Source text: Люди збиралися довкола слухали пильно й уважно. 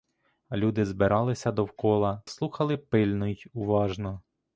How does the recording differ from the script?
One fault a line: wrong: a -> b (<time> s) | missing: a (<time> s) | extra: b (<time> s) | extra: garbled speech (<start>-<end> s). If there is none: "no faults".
no faults